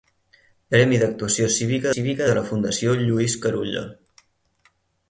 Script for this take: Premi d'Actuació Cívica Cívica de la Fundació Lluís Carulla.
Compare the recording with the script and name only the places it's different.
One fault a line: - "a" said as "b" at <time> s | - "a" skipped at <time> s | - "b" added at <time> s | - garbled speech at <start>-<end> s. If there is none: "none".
none